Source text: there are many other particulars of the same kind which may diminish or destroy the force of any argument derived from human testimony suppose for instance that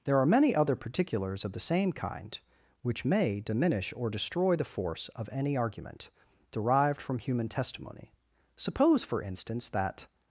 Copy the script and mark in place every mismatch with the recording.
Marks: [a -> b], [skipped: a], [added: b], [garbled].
there are many other particulars of the same kind which may diminish or destroy the force of any argument derived from human testimony suppose for instance that